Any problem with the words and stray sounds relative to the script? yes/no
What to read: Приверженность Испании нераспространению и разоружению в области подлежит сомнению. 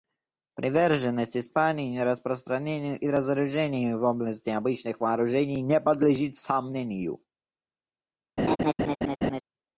yes